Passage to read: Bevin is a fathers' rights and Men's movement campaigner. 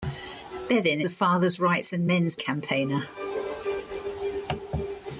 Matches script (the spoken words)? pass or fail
fail